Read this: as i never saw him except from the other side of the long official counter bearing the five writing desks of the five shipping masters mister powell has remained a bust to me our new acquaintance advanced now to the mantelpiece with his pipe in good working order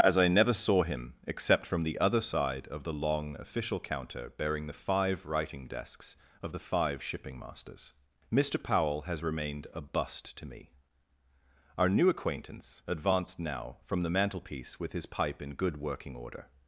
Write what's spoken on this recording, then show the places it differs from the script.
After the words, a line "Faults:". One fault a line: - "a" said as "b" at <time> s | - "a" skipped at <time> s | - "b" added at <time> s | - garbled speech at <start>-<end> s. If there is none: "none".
as i never saw him except from the other side of the long official counter bearing the five writing desks of the five shipping masters mister powell has remained a bust to me our new acquaintance advanced now from the mantelpiece with his pipe in good working order
Faults:
- "to" said as "from" at 13.8 s